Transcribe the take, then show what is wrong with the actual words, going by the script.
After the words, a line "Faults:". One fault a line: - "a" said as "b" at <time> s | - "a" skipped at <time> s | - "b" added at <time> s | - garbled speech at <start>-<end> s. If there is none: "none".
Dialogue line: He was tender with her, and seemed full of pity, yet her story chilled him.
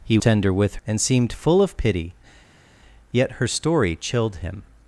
He tender with and seemed full of pity, yet her story chilled him.
Faults:
- "was" skipped at 0.2 s
- "her" skipped at 0.8 s